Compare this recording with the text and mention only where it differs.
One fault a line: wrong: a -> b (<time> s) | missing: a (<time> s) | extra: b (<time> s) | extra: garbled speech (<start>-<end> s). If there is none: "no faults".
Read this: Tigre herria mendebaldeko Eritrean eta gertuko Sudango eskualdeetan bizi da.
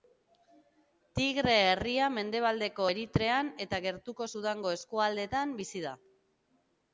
no faults